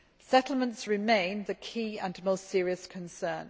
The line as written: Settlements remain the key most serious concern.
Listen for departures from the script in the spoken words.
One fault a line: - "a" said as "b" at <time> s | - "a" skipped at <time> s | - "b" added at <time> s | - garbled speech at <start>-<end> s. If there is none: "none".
- "and" added at 2.0 s